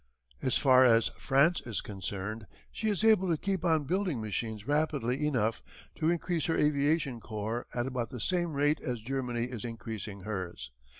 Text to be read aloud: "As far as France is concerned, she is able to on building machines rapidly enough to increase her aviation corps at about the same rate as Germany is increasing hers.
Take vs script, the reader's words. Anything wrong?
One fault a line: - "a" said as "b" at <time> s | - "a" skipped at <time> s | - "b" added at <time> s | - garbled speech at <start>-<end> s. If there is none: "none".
- "keep" added at 3.4 s